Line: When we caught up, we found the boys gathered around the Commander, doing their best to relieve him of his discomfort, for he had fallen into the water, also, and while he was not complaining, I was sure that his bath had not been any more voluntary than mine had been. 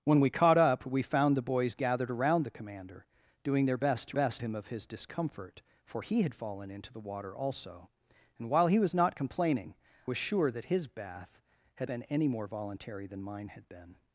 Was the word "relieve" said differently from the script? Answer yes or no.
yes